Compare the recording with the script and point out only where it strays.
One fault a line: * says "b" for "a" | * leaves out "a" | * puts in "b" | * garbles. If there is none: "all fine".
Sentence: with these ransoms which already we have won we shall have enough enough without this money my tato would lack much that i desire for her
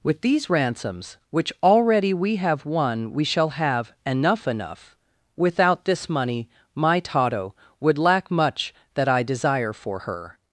all fine